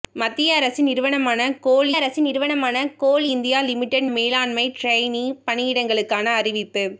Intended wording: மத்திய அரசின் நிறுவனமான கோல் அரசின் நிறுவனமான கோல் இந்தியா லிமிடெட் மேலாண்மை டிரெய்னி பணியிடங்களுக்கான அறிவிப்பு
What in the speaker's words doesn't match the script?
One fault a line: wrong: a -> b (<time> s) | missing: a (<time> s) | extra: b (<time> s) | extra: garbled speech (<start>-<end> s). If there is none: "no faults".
no faults